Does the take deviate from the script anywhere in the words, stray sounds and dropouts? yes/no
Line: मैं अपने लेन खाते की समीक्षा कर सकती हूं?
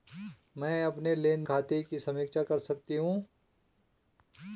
no